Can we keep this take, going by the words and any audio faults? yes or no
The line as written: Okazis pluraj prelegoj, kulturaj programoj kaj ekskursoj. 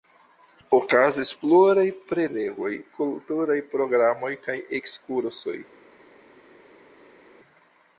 yes